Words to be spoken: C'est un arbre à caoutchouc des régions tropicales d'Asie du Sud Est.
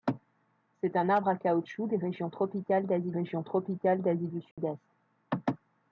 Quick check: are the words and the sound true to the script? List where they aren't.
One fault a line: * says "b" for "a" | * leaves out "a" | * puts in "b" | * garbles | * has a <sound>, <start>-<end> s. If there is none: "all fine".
* puts in "régions tropicales d'Asie"
* has a dropout, 4.5-4.6 s